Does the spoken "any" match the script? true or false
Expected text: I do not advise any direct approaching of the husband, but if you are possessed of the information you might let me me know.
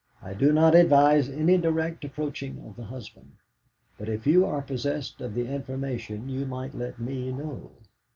true